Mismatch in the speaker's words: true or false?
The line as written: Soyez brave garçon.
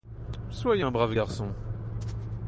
true